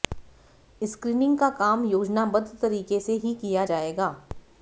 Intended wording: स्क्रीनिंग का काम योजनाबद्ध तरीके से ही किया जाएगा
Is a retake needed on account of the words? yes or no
no